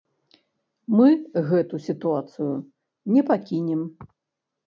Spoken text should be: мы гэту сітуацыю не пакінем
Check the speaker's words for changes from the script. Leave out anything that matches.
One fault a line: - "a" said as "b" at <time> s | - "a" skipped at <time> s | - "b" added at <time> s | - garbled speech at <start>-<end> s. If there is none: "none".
none